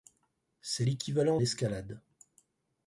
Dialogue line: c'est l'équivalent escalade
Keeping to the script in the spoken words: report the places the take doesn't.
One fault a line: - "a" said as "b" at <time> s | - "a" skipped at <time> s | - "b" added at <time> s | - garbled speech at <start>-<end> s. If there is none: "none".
none